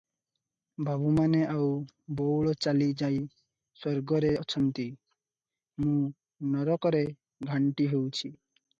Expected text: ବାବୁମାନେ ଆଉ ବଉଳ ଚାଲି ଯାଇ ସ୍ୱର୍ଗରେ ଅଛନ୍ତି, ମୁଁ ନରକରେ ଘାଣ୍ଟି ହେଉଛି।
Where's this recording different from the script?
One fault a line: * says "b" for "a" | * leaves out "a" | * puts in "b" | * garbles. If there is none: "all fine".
all fine